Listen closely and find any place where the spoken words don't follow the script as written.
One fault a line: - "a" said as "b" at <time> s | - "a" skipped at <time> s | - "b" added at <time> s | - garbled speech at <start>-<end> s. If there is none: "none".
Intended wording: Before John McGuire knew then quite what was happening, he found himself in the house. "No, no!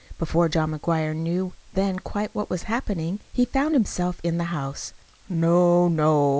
none